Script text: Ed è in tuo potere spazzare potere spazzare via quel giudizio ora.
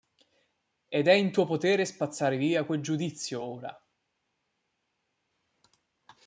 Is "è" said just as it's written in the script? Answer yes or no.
yes